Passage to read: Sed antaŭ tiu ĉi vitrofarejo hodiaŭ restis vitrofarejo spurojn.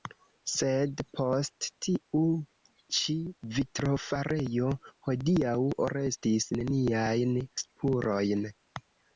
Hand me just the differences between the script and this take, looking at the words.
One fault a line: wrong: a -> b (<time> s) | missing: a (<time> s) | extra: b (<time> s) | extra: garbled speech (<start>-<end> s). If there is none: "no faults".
wrong: antaŭ -> post (1.2 s)
wrong: vitrofarejo -> neniajn (6.6 s)